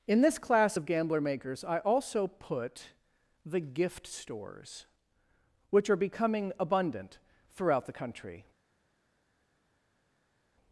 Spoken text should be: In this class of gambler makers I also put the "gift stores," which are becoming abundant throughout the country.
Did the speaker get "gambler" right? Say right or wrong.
right